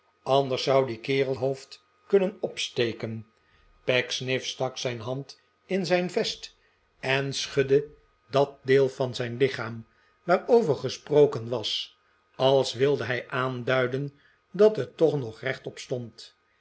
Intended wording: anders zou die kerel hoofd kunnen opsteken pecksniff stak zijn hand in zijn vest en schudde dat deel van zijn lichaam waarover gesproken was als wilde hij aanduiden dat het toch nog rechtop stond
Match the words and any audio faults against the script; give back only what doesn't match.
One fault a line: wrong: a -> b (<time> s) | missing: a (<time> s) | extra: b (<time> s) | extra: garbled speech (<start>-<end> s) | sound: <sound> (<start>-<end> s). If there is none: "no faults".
no faults